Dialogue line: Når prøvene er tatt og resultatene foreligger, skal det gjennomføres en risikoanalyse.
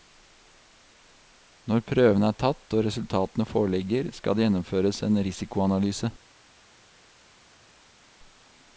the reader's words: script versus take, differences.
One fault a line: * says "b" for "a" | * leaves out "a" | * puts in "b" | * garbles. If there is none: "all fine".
all fine